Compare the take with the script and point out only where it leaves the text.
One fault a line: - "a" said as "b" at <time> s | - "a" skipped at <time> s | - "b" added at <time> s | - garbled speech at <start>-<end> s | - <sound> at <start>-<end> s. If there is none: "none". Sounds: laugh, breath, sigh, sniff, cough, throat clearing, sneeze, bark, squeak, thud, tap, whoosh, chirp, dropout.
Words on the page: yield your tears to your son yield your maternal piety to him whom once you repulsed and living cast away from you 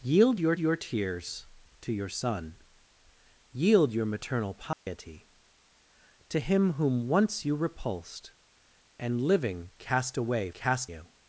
- "your" added at 0.6 s
- dropout at 4.7-4.9 s
- "from" said as "cast" at 10.5 s